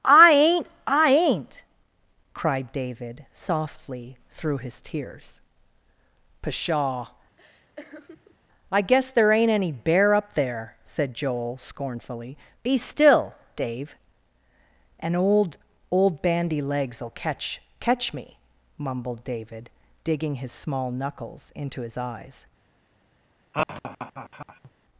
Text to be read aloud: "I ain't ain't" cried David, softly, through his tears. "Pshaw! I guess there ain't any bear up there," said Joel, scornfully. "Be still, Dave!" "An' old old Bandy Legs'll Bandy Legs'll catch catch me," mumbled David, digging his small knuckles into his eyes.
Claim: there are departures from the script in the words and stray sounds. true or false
true